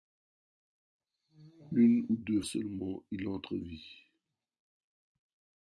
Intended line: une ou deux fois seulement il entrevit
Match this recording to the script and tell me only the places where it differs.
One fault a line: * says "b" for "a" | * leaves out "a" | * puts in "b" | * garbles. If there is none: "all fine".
* leaves out "fois"